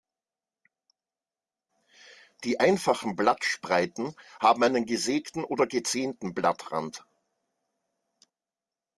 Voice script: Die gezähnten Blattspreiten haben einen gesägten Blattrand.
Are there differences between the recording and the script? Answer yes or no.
yes